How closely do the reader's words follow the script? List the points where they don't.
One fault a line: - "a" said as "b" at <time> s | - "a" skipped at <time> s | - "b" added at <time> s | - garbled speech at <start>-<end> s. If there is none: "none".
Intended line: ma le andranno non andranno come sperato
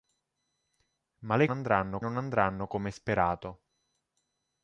none